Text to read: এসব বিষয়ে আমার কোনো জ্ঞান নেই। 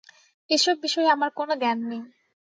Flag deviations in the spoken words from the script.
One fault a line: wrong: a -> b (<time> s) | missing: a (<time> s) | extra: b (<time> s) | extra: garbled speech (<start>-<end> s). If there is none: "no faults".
no faults